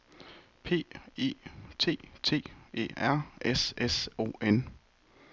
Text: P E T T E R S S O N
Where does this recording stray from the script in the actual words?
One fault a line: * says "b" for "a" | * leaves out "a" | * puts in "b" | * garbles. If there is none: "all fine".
all fine